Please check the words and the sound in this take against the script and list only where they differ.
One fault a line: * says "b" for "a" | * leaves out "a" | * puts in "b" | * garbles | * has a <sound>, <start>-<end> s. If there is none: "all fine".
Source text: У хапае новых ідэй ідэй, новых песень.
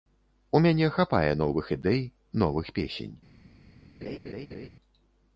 * puts in "мяне"
* leaves out "ідэй"
* has a laugh, 4.0-4.7 s